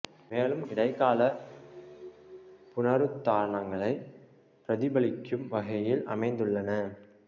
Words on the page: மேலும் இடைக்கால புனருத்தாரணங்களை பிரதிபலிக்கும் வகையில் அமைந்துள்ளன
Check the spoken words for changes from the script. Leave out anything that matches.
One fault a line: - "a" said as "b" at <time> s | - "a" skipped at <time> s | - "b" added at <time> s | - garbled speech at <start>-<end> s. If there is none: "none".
none